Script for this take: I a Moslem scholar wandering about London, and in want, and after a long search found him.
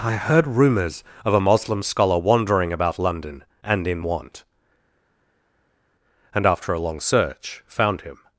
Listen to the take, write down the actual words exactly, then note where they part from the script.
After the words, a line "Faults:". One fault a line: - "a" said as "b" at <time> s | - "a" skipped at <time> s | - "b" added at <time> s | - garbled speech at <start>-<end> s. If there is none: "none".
I heard rumours of a Moslem scholar wandering about London, and in want, and after a long search found him.
Faults:
- "heard rumours of" added at 0.1 s